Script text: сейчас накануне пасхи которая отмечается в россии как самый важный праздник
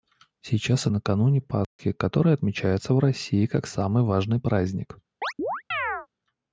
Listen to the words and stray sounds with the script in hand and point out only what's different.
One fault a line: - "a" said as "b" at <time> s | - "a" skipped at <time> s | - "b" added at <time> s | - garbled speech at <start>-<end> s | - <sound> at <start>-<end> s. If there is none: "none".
- dropout at 1.6-1.8 s
- chirp at 5.2-6.1 s